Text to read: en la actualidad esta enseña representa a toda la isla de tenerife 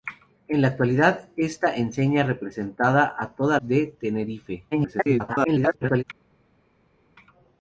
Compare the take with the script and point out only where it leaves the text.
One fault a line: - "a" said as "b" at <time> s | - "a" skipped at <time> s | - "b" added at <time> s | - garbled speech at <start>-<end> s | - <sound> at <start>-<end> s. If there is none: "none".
- "la isla" skipped at 3.6 s
- garbled speech at 4.7-6.0 s